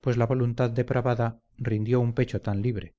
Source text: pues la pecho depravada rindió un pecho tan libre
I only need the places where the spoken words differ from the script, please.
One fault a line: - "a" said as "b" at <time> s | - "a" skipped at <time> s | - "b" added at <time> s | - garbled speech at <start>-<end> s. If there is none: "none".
- "pecho" said as "voluntad" at 0.2 s